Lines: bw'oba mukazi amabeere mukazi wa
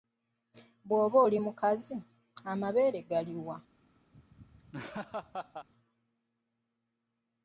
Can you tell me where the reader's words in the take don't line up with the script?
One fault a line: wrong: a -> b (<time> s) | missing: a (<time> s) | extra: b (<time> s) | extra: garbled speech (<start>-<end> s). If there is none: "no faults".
extra: oli (1.3 s)
wrong: mukazi -> gali (3.1 s)